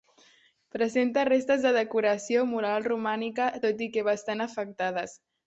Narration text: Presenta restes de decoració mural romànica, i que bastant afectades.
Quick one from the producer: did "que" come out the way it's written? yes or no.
yes